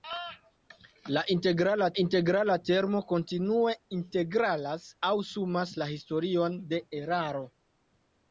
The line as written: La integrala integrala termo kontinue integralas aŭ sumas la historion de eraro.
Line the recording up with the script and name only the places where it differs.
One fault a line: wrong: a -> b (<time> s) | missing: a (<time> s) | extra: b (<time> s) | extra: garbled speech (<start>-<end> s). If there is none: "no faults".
no faults